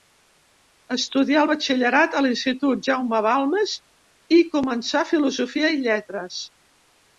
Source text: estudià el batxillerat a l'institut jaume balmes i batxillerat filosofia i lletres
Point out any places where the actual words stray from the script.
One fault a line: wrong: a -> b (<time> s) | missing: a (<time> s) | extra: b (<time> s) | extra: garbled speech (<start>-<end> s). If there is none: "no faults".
wrong: batxillerat -> començà (4.6 s)